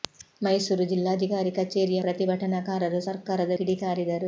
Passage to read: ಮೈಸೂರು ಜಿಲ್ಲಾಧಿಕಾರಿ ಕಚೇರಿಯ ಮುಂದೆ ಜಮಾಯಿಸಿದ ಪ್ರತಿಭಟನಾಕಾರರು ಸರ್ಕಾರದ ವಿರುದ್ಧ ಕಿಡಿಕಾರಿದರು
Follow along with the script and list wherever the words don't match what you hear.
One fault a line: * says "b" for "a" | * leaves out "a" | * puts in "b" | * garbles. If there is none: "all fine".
* leaves out "ಮುಂದೆ ಜಮಾಯಿಸಿದ"
* leaves out "ವಿರುದ್ಧ"